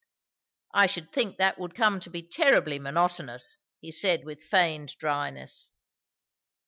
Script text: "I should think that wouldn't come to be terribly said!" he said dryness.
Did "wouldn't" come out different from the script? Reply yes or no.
yes